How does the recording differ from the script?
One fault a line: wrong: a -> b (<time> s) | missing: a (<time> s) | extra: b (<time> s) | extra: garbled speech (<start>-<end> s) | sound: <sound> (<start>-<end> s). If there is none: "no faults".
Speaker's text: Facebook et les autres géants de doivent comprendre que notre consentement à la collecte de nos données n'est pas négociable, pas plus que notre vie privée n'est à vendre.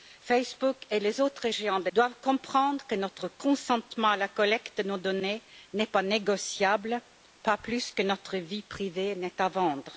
no faults